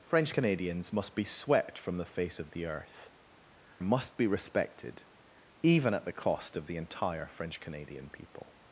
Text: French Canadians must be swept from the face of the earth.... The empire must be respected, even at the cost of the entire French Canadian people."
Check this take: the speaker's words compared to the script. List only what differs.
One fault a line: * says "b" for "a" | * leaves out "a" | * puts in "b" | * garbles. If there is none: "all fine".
* leaves out "The empire"